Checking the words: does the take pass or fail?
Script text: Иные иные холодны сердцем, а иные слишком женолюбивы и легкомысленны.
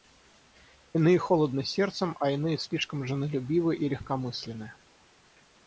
fail